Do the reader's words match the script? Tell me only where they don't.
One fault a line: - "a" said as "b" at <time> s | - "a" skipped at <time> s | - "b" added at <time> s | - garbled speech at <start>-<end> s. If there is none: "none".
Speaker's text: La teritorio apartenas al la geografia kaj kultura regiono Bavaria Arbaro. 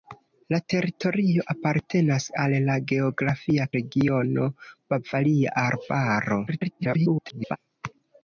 - "kaj kultura" skipped at 3.7 s
- garbled speech at 6.5-7.6 s